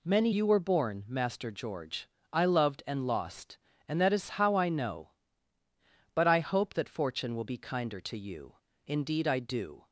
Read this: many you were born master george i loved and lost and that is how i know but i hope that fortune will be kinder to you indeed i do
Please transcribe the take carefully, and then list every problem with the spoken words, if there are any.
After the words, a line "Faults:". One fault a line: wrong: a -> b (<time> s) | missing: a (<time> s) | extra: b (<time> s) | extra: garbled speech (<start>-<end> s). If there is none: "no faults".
many you were born master george i loved and lost and that is how i know but i hope that fortune will be kinder to you indeed i do
Faults:
no faults